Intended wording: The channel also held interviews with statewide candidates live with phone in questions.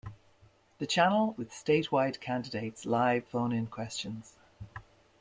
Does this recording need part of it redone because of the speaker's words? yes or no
yes